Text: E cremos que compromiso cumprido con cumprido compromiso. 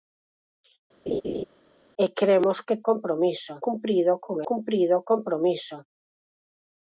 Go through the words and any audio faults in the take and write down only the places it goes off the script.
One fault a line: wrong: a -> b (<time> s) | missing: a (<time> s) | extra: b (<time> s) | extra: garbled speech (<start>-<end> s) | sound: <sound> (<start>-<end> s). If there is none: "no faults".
sound: laugh (1.1-1.4 s)